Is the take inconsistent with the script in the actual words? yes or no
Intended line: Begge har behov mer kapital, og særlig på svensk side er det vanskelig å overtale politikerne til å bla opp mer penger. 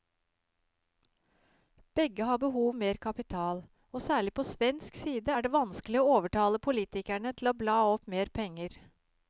no